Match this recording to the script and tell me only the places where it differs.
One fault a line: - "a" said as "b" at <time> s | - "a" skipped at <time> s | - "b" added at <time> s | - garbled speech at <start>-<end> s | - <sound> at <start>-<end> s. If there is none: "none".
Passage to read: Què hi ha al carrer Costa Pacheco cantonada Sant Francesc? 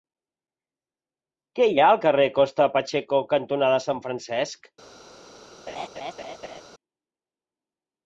- laugh at 5.7-6.6 s